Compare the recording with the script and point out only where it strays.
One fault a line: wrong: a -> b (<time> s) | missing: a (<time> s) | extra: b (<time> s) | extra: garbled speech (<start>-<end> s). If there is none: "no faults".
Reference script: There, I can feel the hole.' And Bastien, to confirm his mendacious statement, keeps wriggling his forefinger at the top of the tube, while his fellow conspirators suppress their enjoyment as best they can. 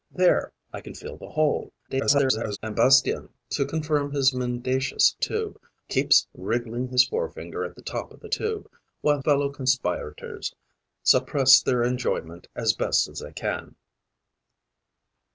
extra: garbled speech (1.9-2.6 s)
wrong: statement -> tube (5.2 s)
missing: his (9.2 s)